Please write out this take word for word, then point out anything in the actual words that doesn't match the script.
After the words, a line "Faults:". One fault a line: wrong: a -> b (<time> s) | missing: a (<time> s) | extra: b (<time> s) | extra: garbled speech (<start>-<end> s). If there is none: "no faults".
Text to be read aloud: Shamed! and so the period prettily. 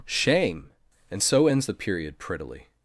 Shame! and so ends the period prettily.
Faults:
wrong: Shamed -> Shame (0.1 s)
extra: ends (1.5 s)